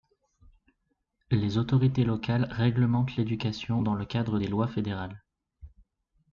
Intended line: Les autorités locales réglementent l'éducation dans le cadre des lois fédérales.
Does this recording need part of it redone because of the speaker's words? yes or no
no